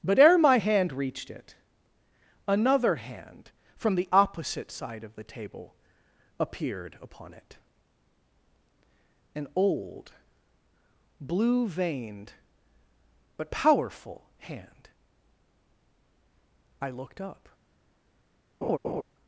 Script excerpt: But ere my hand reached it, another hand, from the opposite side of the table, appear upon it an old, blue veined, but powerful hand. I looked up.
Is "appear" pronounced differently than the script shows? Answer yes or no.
yes